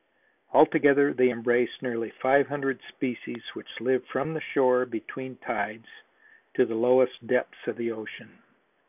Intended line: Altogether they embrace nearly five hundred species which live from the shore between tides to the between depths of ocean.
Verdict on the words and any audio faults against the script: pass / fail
fail